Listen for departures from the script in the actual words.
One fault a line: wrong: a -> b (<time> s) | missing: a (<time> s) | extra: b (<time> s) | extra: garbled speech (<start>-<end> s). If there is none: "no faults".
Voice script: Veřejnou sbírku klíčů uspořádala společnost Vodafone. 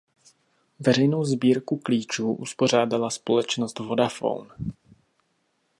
no faults